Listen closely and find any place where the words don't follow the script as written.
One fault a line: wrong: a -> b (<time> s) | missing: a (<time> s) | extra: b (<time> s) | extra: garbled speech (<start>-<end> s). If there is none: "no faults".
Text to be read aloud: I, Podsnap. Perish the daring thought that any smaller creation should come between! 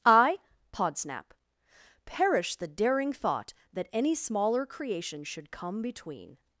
no faults